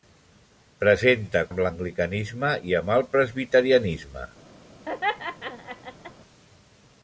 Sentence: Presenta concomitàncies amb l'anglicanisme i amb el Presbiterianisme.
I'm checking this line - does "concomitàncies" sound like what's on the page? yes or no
no